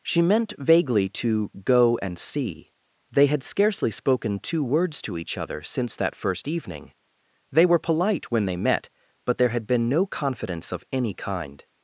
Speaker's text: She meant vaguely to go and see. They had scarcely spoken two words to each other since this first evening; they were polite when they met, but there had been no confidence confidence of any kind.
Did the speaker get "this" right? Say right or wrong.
wrong